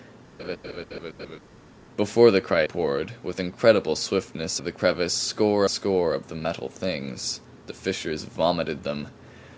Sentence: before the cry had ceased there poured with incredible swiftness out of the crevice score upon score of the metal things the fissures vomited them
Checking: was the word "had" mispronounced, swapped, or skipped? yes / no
yes